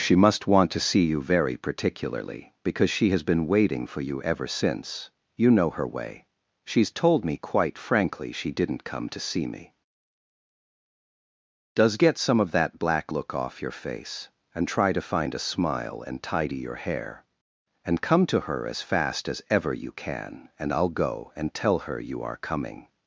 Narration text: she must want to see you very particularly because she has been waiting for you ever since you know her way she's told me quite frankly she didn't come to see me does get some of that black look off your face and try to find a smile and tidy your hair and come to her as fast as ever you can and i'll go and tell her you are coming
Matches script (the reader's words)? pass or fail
pass